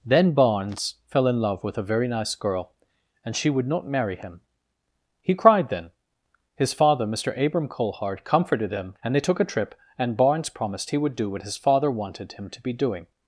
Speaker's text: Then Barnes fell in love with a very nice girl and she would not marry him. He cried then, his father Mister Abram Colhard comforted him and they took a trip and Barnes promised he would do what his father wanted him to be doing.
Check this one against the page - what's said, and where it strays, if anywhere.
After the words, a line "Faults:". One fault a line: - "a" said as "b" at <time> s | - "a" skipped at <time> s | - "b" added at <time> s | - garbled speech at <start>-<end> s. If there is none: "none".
Then Barnes fell in love with a very nice girl and she would not marry him. He cried then, his father Mister Abram Colhard comforted him and they took a trip and Barnes promised he would do what his father wanted him to be doing.
Faults:
none